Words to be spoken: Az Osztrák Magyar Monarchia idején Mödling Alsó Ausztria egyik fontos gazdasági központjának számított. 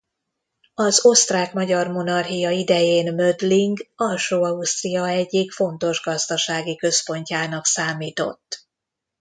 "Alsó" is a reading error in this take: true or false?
false